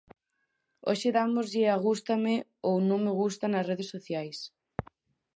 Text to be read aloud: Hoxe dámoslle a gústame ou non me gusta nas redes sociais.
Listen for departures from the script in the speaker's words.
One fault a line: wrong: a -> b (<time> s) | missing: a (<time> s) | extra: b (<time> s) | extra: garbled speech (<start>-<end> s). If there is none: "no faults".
no faults